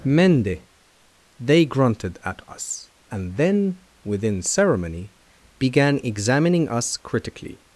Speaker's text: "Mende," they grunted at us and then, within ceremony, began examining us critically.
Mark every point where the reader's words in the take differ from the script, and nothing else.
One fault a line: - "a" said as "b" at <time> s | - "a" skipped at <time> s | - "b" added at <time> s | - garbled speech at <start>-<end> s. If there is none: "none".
none